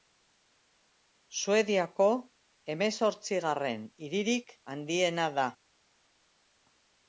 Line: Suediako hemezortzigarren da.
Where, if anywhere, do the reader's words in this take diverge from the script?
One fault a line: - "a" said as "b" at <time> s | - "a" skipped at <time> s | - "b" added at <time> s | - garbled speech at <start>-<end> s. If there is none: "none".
- "hiririk handiena" added at 4.1 s